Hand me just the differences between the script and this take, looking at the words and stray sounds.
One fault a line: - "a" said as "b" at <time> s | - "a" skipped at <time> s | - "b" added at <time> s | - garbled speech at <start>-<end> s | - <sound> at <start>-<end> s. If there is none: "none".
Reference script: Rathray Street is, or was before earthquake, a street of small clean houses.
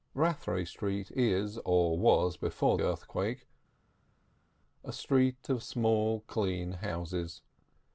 none